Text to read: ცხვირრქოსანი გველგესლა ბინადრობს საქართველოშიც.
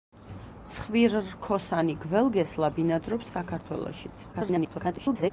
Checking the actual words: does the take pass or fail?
fail